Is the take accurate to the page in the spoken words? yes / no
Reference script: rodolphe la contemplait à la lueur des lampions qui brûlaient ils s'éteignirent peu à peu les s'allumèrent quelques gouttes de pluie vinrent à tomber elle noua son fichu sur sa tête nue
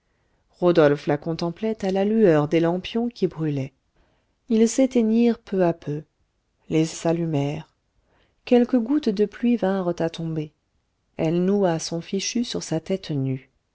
yes